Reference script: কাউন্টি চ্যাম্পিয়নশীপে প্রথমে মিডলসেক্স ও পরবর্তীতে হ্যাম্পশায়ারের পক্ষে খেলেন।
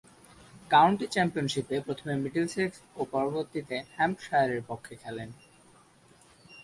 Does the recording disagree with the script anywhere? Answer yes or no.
no